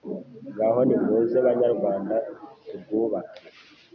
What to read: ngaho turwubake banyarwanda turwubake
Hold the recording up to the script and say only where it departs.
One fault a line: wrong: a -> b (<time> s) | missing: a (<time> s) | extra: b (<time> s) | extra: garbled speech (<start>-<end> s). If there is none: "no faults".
wrong: turwubake -> nimuze (0.9 s)